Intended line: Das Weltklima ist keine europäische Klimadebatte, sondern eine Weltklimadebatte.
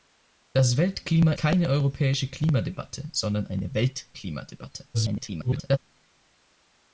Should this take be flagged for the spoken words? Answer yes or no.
yes